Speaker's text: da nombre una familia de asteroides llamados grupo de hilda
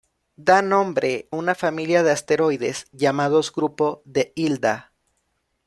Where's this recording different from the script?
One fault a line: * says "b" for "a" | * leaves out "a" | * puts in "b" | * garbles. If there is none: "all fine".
all fine